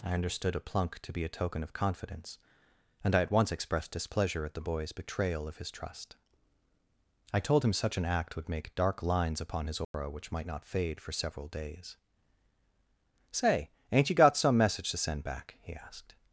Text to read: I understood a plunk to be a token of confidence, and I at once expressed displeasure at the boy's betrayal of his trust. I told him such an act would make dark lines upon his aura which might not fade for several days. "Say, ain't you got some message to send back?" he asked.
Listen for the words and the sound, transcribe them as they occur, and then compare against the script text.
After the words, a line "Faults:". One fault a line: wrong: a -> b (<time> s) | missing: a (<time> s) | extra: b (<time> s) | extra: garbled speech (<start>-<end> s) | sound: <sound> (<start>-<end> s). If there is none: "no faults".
I understood a plunk to be a token of confidence, and I at once expressed displeasure at the boy's betrayal of his trust. I told him such an act would make dark lines upon his aura which might not fade for several days. "Say, ain't you got some message to send back?" he asked.
Faults:
sound: dropout (9.8-9.9 s)